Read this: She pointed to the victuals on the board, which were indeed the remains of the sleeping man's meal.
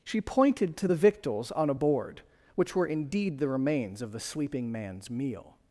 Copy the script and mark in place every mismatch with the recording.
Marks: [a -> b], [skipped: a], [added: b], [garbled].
She pointed to the victuals on [the -> a] board, which were indeed the remains of the sleeping man's meal.